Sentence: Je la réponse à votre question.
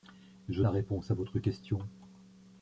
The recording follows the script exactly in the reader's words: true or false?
true